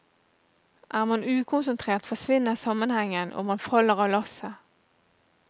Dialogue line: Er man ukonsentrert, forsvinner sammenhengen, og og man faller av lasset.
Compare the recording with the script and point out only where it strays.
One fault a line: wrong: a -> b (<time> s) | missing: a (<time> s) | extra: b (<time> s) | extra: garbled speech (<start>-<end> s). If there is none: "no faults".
missing: og (3.5 s)